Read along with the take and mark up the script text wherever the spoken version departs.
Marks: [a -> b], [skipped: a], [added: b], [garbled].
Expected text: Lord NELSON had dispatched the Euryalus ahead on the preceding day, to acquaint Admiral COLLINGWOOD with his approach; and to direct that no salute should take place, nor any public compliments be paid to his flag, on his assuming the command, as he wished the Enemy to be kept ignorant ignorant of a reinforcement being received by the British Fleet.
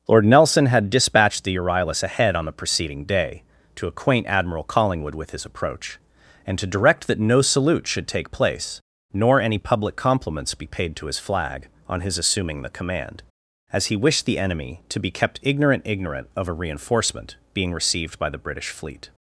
Lord NELSON had dispatched the Euryalus ahead on the preceding day, to acquaint Admiral COLLINGWOOD with his approach; and to direct that no salute should take place, nor any public compliments be paid to his flag, on his assuming the command, as he wished the Enemy to be kept ignorant ignorant of a reinforcement being received by the British Fleet.